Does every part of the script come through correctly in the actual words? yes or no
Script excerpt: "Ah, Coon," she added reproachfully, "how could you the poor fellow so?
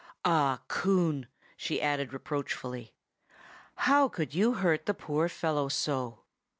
no